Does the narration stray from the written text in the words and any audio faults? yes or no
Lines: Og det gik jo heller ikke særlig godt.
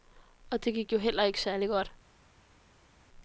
no